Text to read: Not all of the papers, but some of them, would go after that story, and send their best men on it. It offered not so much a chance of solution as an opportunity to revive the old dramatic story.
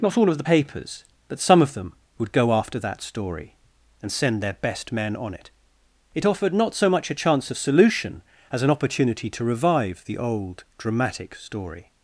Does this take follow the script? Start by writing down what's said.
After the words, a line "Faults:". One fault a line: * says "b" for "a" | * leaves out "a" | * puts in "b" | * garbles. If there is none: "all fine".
Not all of the papers, but some of them, would go after that story, and send their best men on it. It offered not so much a chance of solution as an opportunity to revive the old dramatic story.
Faults:
all fine